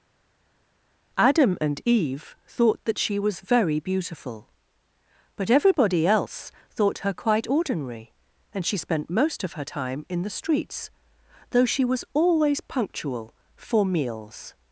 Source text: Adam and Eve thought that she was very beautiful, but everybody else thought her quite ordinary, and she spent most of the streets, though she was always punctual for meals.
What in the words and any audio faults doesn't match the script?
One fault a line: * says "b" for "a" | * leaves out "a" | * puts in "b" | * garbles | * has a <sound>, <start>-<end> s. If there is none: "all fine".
* puts in "her time in"